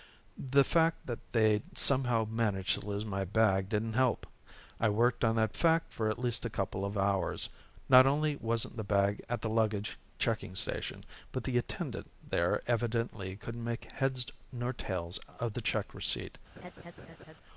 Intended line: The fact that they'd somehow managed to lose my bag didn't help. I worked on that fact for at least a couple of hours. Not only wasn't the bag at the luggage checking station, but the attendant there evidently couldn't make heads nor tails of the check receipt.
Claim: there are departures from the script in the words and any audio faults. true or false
true